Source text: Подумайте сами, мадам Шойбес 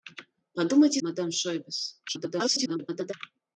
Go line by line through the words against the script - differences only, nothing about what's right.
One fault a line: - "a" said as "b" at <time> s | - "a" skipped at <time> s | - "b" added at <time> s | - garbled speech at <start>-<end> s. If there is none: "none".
- "сами" skipped at 1.0 s
- garbled speech at 2.1-3.1 s